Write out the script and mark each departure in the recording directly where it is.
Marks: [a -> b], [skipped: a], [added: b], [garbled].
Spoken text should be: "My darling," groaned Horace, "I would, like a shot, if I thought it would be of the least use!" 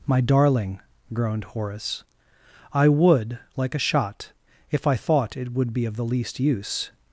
"My darling," groaned Horace, "I would, like a shot, if I thought it would be of the least use!"